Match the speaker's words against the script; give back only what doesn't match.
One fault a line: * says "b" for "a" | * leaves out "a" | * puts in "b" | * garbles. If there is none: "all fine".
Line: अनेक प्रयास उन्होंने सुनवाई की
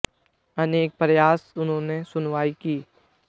all fine